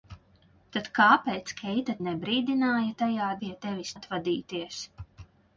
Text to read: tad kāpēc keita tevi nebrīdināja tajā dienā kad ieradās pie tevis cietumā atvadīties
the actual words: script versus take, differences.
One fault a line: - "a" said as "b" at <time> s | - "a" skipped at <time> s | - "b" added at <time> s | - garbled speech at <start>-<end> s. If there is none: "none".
- "tevi" skipped at 1.9 s
- "dienā kad ieradās" skipped at 3.3 s
- "cietumā" skipped at 3.9 s